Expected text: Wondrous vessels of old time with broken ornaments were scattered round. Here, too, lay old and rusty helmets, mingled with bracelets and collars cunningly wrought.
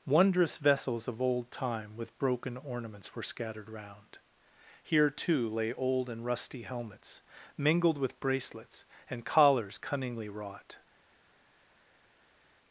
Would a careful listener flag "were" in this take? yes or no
no